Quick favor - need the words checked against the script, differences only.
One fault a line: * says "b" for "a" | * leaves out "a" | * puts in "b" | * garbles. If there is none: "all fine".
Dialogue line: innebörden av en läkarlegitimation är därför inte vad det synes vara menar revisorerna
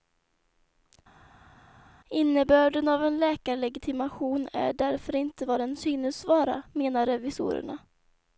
* says "den" for "det"